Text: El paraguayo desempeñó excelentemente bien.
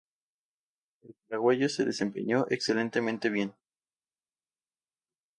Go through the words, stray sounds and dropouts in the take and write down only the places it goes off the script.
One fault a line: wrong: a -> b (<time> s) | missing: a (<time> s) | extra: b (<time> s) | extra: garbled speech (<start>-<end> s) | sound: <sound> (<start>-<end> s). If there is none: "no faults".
extra: se (1.7 s)